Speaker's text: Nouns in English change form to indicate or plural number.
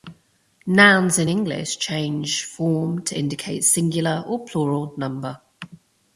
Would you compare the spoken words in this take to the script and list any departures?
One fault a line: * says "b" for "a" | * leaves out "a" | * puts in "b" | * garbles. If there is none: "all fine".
* puts in "singular"